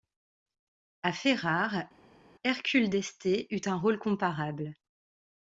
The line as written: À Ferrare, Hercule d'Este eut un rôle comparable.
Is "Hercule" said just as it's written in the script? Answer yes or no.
yes